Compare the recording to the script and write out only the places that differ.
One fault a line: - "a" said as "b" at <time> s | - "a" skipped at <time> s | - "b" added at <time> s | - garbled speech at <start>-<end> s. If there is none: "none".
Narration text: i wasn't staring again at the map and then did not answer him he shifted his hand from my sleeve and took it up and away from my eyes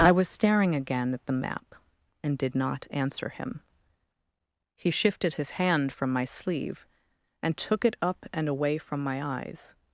- "wasn't" said as "was" at 0.1 s
- "then" skipped at 2.4 s